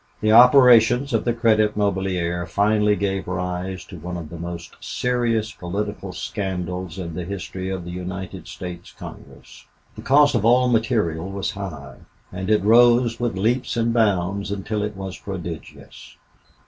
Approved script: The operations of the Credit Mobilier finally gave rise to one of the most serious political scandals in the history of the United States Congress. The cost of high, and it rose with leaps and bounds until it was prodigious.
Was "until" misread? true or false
false